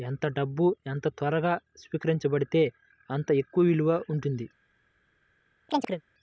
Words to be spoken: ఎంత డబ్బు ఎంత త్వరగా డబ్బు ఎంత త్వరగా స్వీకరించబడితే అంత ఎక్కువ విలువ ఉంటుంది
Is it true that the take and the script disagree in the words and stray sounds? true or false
true